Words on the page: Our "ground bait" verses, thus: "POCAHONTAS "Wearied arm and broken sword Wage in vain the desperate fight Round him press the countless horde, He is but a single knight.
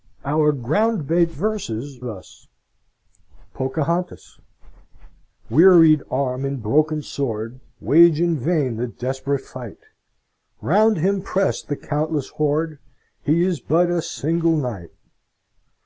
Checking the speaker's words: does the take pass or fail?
pass